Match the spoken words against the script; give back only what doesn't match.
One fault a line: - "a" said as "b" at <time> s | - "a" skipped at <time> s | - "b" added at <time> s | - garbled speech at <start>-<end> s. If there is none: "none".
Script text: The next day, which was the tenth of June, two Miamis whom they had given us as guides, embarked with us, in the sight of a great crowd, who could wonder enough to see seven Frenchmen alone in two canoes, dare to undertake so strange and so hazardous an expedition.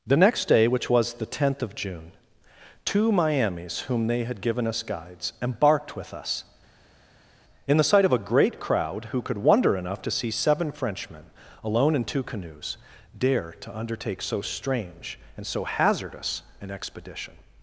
- "as" skipped at 4.8 s